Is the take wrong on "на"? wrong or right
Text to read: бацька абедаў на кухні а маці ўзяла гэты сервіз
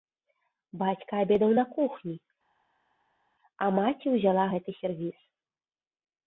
right